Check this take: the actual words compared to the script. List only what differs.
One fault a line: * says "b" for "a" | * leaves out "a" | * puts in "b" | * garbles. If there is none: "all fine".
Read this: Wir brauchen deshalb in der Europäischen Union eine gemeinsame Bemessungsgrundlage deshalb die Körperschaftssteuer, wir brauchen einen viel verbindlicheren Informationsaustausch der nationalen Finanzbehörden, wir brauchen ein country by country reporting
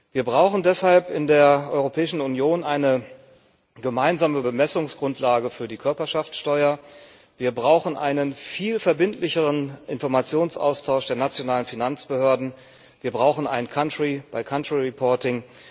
* says "für" for "deshalb"